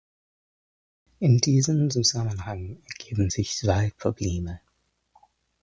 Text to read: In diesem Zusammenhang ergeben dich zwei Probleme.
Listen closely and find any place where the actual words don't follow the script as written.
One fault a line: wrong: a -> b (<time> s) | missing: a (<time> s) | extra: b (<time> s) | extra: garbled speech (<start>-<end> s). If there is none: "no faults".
wrong: dich -> sich (3.3 s)